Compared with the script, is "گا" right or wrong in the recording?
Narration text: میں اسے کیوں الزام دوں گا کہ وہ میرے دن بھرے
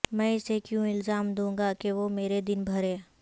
right